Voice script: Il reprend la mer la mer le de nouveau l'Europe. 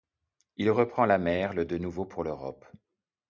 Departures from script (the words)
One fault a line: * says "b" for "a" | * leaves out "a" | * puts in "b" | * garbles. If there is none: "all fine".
* leaves out "la mer"
* puts in "pour"